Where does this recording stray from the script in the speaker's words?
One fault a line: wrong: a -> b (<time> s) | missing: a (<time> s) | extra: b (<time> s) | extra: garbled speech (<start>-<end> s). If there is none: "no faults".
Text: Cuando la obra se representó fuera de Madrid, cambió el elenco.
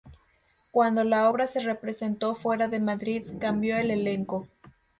no faults